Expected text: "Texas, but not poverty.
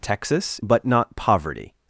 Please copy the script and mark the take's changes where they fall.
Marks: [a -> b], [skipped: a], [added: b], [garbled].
"Texas, but not poverty.